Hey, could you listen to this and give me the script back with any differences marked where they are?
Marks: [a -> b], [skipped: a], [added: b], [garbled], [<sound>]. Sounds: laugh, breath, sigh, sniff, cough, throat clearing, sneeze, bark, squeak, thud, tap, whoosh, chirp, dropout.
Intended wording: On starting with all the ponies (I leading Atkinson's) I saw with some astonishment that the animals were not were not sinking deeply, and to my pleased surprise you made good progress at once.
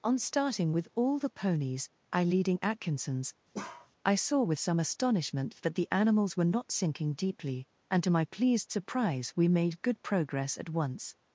On starting with all the ponies (I leading Atkinson's) [bark] I saw with some astonishment that the animals were not [skipped: were not] sinking deeply, and to my pleased surprise [you -> we] made good progress at once.